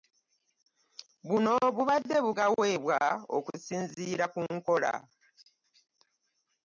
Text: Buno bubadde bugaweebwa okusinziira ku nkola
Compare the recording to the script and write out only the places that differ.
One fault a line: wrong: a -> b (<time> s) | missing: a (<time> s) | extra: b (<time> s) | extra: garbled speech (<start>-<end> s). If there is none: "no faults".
no faults